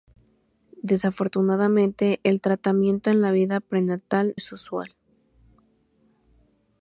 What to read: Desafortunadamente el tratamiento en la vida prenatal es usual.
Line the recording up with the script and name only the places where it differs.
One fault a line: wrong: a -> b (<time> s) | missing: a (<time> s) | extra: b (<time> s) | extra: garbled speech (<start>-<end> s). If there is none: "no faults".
no faults